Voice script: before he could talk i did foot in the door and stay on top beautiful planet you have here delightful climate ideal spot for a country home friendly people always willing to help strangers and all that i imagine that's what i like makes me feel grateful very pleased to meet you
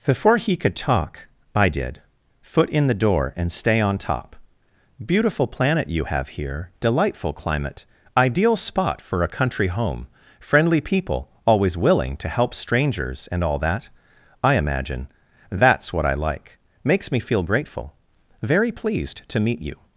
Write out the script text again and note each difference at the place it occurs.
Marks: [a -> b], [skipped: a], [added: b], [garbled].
before he could talk i did foot in the door and stay on top beautiful planet you have here delightful climate ideal spot for a country home friendly people always willing to help strangers and all that i imagine that's what i like makes me feel grateful very pleased to meet you